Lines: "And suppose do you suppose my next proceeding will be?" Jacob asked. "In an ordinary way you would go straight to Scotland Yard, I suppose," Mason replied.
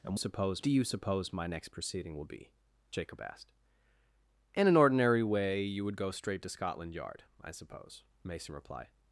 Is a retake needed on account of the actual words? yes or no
no